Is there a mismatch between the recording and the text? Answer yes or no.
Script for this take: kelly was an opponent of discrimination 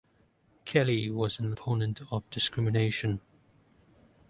no